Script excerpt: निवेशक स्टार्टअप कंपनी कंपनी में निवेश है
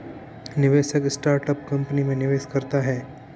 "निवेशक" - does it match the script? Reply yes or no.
yes